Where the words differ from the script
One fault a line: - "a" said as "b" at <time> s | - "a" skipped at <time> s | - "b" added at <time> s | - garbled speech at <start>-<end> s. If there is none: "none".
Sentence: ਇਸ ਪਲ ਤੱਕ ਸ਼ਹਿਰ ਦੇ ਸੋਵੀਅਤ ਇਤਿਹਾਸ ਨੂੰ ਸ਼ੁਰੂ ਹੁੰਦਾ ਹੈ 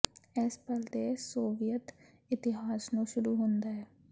- "ਤੱਕ ਸ਼ਹਿਰ" skipped at 0.8 s